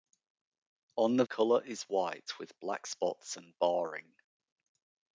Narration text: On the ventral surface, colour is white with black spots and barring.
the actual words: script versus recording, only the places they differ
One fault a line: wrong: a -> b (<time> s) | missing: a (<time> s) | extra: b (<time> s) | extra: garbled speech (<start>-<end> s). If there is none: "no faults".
missing: ventral surface (1.2 s)